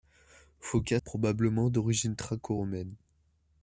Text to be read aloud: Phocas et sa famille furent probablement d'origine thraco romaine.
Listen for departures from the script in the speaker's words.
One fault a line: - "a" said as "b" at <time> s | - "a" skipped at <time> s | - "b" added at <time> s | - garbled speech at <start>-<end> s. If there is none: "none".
- "sa famille furent" skipped at 1.0 s